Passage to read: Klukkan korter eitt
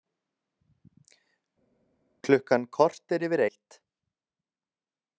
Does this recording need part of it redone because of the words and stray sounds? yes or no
yes